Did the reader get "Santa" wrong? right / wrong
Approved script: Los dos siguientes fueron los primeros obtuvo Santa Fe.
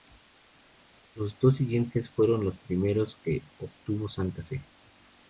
right